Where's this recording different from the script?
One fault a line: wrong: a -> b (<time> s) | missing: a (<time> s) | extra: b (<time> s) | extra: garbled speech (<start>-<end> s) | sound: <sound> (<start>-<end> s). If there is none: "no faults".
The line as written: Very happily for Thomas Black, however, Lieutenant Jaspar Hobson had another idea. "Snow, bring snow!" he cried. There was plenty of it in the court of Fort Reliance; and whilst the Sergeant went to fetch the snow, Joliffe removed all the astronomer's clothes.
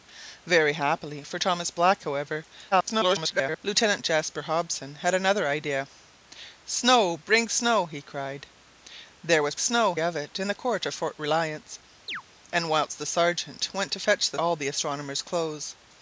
extra: garbled speech (2.7-3.6 s)
wrong: plenty -> snow (9.6 s)
sound: chirp (12.1-12.2 s)
missing: snow Joliffe removed (14.4 s)